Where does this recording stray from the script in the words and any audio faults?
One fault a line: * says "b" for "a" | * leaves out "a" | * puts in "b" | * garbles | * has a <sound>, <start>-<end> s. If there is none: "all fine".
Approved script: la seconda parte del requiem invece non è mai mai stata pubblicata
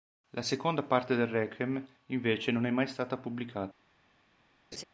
* leaves out "mai"
* has a laugh, 4.7-4.8 s